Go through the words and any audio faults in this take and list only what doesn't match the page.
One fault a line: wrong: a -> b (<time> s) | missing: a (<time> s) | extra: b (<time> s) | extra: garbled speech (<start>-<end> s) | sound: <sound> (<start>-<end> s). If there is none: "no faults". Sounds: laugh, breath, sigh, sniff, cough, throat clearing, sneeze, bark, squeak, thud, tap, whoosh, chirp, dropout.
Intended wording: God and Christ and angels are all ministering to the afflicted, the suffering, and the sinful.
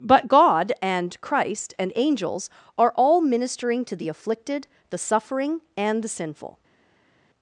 extra: but (0.0 s)